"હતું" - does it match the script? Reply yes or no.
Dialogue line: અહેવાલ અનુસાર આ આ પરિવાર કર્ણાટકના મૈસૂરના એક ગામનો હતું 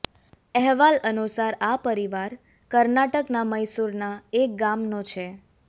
no